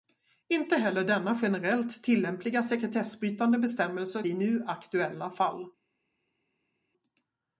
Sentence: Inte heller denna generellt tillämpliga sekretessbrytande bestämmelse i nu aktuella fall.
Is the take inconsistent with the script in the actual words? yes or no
no